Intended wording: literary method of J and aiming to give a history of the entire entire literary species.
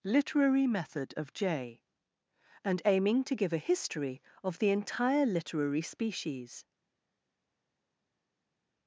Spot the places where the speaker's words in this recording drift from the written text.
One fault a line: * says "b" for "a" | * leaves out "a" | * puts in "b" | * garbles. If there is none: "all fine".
* leaves out "entire"